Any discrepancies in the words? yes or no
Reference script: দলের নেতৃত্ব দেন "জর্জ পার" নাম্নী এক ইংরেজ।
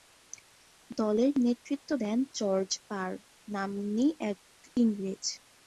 no